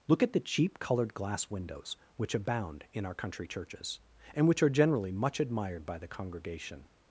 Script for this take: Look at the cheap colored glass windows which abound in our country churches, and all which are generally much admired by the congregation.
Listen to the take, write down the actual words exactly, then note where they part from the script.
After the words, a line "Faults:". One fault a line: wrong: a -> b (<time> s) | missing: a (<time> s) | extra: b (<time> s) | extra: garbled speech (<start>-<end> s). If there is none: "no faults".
Look at the cheap colored glass windows which abound in our country churches, and which are generally much admired by the congregation.
Faults:
missing: all (4.5 s)